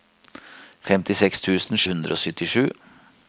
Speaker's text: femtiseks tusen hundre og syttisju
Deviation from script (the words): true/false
false